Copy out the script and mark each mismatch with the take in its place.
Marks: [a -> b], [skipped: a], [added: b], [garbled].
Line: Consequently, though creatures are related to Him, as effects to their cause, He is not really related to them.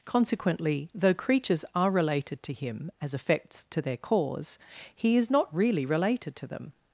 Consequently, though creatures are related to Him, as effects to their cause, He is not really related to them.